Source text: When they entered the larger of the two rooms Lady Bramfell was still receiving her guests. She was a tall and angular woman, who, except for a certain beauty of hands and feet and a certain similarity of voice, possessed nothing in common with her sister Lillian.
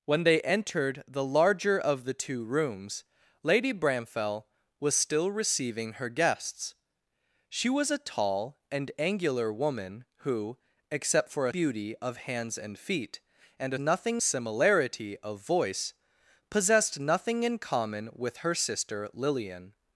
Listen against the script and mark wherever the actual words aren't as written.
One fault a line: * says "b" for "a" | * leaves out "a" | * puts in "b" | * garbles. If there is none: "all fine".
* leaves out "certain"
* says "nothing" for "certain"